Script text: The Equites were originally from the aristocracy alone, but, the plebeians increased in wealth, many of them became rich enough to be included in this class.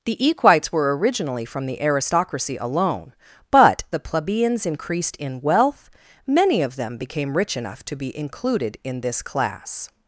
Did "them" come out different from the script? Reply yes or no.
no